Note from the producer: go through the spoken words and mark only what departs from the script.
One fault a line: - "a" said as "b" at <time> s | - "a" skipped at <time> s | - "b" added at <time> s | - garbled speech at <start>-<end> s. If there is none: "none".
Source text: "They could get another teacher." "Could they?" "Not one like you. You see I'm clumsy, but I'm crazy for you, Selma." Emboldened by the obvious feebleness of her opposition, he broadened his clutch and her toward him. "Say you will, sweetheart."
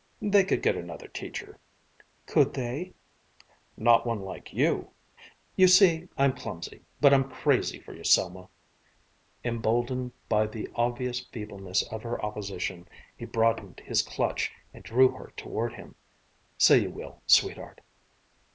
- "drew" added at 14.8 s